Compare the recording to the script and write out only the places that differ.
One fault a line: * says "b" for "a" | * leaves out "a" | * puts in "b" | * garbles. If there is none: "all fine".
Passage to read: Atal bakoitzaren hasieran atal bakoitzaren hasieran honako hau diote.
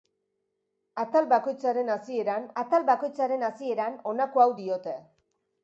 all fine